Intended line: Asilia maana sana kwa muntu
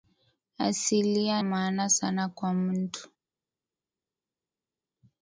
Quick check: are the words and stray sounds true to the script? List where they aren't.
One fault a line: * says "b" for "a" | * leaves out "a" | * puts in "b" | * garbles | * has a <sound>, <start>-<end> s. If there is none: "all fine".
all fine